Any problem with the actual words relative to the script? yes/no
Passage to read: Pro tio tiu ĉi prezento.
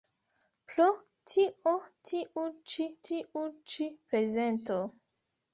yes